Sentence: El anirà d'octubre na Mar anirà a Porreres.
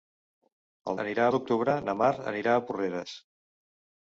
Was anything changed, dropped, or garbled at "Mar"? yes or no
no